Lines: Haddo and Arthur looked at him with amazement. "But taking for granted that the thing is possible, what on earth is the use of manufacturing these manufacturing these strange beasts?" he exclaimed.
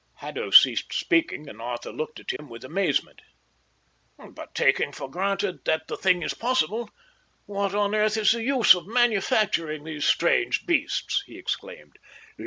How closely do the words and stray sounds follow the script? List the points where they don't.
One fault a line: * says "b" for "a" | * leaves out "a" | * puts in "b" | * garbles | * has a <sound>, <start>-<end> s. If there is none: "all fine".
* puts in "ceased speaking"
* has a dropout, 2.4-2.4 s
* leaves out "manufacturing these"